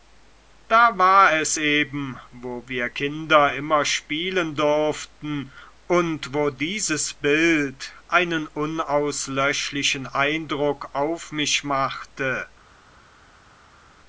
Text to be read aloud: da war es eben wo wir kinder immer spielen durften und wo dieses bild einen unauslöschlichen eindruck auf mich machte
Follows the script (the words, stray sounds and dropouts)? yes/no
yes